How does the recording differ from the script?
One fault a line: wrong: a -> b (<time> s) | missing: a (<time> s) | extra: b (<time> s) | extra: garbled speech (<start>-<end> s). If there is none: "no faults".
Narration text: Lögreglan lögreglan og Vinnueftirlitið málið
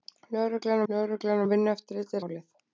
no faults